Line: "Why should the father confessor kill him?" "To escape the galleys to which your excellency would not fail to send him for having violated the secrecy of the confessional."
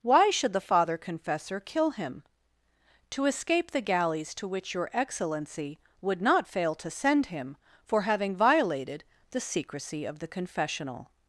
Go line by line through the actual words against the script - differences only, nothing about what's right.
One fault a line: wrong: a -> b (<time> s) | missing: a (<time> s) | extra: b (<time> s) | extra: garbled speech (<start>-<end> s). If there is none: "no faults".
no faults